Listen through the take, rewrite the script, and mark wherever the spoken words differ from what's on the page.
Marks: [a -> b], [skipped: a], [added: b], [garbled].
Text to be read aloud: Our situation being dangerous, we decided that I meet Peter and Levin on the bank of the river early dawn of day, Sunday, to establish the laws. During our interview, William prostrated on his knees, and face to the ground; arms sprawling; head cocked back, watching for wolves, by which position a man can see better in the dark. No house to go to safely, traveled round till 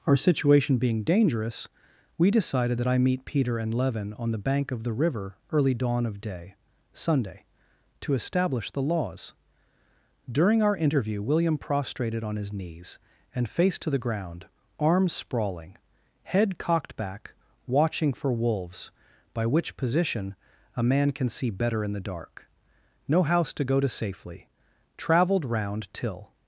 Our situation being dangerous, we decided that I meet Peter and Levin on the bank of the river early dawn of day, Sunday, to establish the laws. During our interview, William prostrated on his knees, and face to the ground; arms sprawling; head cocked back, watching for wolves, by which position a man can see better in the dark. No house to go to safely, traveled round till